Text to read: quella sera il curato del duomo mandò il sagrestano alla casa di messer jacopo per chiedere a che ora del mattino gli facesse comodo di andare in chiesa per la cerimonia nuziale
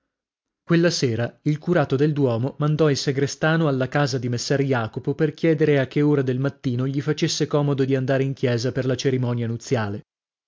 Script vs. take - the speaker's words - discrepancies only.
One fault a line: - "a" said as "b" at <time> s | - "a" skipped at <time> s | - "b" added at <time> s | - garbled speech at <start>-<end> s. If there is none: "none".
none